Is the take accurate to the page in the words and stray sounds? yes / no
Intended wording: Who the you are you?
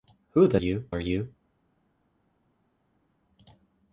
yes